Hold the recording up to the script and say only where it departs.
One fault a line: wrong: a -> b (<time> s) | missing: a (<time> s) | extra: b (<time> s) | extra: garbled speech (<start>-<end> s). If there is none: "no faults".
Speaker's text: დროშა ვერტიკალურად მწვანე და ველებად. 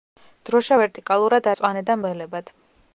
no faults